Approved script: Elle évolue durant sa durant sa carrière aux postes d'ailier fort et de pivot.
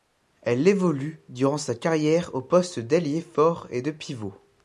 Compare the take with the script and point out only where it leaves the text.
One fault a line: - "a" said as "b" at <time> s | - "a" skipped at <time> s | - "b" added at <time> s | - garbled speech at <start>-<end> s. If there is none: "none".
- "durant sa" skipped at 1.8 s